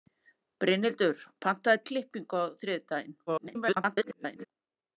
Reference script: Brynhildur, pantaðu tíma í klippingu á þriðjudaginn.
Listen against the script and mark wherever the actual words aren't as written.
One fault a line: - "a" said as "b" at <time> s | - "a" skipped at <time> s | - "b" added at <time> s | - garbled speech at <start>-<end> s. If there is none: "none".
- "tíma" skipped at 1.8 s
- garbled speech at 3.3-4.5 s